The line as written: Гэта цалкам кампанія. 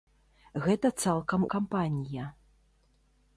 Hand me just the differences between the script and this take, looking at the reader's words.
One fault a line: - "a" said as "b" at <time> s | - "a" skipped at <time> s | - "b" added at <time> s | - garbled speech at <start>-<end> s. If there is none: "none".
none